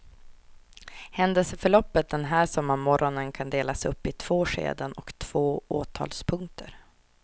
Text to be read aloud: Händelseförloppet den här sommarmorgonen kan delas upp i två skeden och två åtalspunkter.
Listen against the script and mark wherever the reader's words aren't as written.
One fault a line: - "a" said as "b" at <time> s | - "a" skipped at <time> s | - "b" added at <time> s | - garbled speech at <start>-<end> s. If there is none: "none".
none